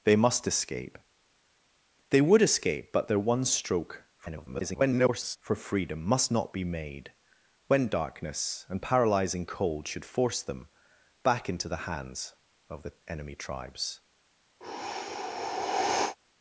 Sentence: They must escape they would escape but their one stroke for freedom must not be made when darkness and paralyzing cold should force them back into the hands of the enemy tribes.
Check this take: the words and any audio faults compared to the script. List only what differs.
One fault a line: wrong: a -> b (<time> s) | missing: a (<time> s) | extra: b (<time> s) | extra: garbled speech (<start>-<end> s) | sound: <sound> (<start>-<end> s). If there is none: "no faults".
extra: garbled speech (4.2-5.4 s)
sound: sigh (14.6-16.2 s)